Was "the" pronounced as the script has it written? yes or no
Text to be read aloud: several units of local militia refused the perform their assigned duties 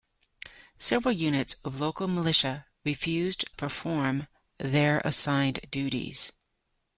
no